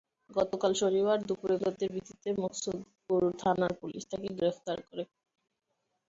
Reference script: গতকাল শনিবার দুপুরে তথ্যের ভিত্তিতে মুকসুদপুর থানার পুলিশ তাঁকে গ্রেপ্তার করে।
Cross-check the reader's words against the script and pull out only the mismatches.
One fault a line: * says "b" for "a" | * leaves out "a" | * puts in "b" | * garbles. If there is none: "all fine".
all fine